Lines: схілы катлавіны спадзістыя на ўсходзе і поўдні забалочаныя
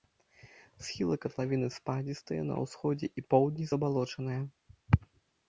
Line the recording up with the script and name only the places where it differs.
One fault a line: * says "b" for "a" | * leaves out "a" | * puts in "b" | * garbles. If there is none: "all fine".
all fine